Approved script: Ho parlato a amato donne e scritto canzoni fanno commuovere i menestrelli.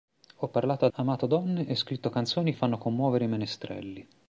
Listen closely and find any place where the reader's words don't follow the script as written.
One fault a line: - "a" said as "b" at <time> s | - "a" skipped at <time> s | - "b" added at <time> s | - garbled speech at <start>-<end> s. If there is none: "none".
none